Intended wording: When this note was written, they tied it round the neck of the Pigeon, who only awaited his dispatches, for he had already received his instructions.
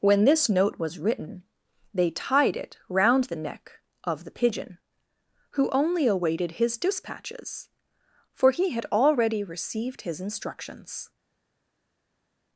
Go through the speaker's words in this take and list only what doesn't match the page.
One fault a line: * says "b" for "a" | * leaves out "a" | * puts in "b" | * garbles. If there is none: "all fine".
all fine